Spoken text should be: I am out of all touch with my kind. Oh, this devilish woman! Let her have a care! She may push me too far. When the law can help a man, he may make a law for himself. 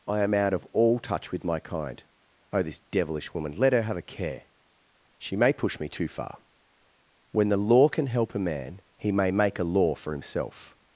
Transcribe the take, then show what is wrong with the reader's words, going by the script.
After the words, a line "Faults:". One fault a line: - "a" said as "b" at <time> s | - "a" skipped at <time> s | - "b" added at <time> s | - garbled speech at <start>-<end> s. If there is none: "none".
I am out of all touch with my kind. Oh, this devilish woman! Let her have a care! She may push me too far. When the law can help a man, he may make a law for himself.
Faults:
none